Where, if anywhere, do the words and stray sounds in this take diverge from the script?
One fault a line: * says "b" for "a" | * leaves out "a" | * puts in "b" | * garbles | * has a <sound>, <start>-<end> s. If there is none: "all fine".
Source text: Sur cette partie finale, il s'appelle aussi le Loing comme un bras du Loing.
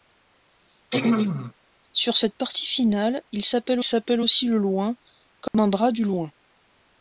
* has a throat clearing, 0.9-1.5 s
* puts in "s'appelle"
* has a dropout, 5.5-5.5 s